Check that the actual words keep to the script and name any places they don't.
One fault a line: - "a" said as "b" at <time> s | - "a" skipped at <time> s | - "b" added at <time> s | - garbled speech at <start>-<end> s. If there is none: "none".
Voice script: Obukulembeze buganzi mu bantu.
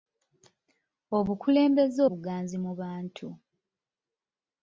none